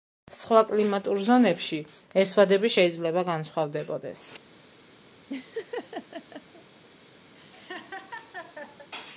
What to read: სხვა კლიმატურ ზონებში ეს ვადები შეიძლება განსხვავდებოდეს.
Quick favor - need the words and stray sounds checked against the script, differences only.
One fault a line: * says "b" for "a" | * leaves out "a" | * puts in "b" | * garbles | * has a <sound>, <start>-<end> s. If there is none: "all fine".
* has a laugh, 5.3-6.6 s
* has a laugh, 7.3-8.9 s